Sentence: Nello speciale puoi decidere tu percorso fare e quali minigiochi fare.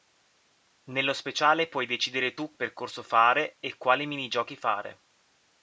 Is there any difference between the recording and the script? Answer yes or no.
no